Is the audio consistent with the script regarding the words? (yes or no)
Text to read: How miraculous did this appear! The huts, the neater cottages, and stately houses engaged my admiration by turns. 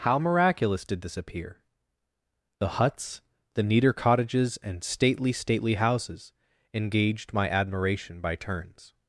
no